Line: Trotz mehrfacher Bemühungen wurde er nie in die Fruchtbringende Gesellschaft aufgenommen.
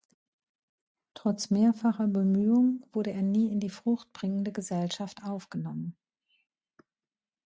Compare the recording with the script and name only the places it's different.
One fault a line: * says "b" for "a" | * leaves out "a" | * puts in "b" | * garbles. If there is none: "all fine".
all fine